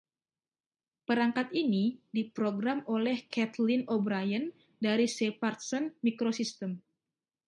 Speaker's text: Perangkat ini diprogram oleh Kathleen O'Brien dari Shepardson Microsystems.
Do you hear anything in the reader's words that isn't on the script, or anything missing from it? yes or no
no